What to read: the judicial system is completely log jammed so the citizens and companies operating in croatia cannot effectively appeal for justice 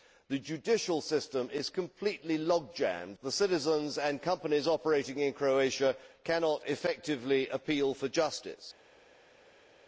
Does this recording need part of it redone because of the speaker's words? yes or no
yes